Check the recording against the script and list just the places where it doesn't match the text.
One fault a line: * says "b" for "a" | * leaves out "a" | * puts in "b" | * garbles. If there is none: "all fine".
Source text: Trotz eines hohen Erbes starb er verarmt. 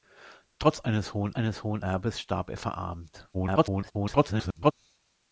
* puts in "eines hohen"
* garbles